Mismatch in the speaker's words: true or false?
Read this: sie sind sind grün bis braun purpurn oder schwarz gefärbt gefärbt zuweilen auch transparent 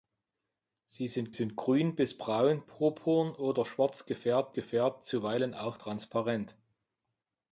false